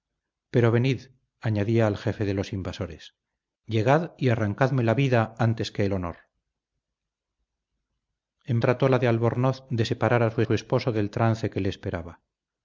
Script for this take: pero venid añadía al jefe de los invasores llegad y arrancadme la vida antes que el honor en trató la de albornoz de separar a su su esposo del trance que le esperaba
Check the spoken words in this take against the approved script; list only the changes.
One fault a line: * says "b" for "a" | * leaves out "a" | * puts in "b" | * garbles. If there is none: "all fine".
all fine